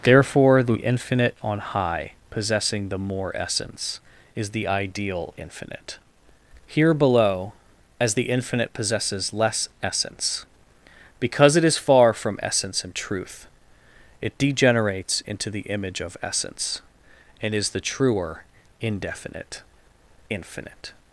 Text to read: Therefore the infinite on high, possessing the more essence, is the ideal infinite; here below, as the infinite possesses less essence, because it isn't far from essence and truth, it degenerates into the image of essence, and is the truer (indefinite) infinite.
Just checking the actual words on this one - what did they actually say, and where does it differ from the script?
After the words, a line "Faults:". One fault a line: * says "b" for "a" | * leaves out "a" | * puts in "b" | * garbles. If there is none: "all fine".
Therefore the infinite on high, possessing the more essence, is the ideal infinite; here below, as the infinite possesses less essence, because it is far from essence and truth, it degenerates into the image of essence, and is the truer (indefinite) infinite.
Faults:
* says "is" for "isn't"